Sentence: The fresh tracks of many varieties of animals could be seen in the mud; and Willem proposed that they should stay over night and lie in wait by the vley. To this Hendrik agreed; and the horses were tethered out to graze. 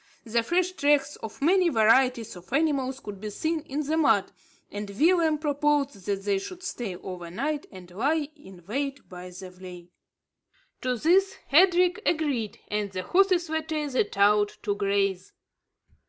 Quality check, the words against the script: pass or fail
pass